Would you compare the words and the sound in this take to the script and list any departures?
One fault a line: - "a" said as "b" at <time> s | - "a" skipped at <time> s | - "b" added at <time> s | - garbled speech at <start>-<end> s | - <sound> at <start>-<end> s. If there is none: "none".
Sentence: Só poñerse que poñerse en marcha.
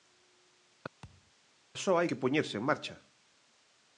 - thud at 1.0-1.3 s
- "poñerse" said as "hai" at 2.0 s